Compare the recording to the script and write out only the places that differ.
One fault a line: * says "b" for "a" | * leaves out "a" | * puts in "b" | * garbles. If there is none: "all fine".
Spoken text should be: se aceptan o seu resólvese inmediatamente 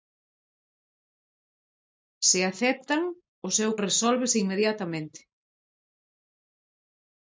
all fine